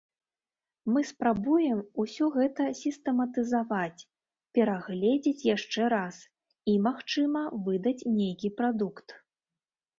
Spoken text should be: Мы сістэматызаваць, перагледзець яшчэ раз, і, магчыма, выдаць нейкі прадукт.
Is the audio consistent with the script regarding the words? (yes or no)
no